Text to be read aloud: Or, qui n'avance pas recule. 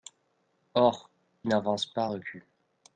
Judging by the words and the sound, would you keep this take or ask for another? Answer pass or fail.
fail